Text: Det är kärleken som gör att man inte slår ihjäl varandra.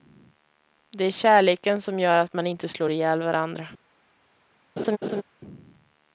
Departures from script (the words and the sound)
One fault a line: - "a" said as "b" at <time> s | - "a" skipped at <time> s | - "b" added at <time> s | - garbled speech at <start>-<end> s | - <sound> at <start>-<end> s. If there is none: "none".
- laugh at 4.8-5.2 s